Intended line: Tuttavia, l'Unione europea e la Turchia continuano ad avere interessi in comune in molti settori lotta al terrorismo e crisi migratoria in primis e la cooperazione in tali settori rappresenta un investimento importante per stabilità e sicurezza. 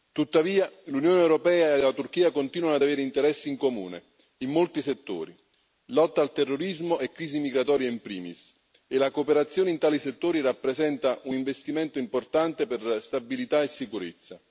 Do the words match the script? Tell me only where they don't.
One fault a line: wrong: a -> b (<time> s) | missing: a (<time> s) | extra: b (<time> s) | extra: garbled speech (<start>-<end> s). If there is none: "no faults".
no faults